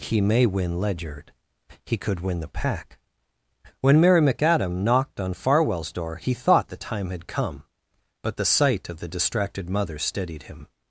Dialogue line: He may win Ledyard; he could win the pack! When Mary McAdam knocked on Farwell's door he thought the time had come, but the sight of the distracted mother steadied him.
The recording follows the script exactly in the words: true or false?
true